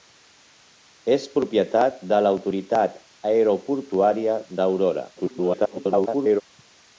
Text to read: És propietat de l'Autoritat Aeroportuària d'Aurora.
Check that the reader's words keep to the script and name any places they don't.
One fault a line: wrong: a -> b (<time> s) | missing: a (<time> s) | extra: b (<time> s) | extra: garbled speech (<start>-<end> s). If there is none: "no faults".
extra: garbled speech (5.2-6.4 s)